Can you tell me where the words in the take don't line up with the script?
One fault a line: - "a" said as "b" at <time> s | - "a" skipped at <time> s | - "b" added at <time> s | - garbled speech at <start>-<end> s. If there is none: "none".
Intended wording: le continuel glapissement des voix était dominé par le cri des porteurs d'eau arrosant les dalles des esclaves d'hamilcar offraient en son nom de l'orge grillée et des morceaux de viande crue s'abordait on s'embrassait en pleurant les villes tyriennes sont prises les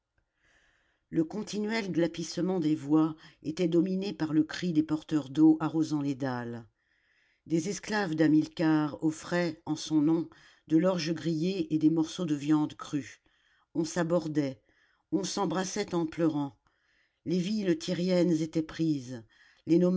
- "on" added at 13.7 s
- "sont" said as "étaient" at 18.4 s